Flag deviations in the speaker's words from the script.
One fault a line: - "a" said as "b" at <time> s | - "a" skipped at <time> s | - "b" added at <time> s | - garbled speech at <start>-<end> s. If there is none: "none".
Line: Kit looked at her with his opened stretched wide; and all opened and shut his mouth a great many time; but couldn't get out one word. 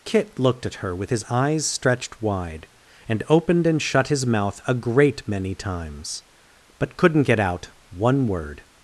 - "opened" said as "eyes" at 1.3 s
- "all" skipped at 3.2 s
- "time" said as "times" at 5.5 s